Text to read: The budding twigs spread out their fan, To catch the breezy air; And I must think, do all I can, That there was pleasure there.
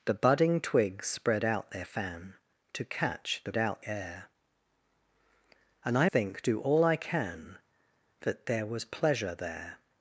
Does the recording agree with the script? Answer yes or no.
no